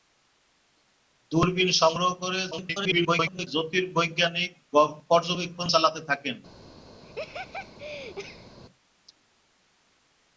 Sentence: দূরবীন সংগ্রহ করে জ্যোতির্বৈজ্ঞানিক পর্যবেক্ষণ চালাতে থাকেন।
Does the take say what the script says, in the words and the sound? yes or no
no